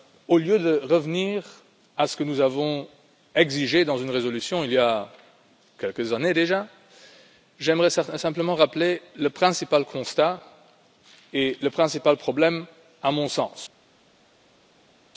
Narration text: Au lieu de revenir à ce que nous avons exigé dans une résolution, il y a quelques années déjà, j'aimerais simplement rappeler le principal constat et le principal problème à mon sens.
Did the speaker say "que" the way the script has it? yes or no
yes